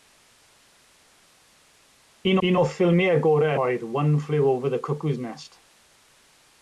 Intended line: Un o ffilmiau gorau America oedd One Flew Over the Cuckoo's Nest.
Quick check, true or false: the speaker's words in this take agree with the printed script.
false